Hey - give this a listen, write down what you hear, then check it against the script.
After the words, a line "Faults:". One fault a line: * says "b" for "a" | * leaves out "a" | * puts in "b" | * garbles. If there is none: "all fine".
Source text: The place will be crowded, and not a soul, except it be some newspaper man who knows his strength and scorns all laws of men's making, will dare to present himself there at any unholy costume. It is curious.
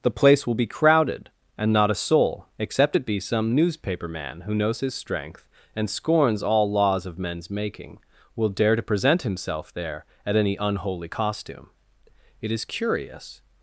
The place will be crowded, and not a soul, except it be some newspaper man who knows his strength and scorns all laws of men's making, will dare to present himself there at any unholy costume. It is curious.
Faults:
all fine